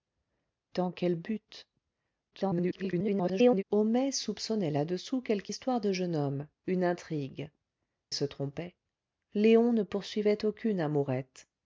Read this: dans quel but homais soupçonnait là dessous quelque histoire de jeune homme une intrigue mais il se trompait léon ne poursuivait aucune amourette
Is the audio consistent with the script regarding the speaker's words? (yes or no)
no